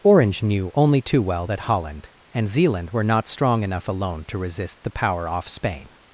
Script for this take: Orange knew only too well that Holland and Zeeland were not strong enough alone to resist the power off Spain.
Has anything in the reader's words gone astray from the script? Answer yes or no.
no